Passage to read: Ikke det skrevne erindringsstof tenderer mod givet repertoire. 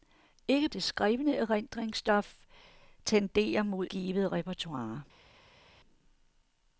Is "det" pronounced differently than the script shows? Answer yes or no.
no